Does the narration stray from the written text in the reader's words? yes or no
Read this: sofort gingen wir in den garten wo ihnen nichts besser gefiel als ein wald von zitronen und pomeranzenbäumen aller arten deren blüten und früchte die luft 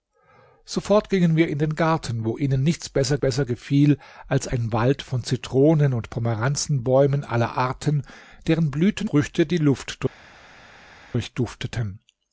yes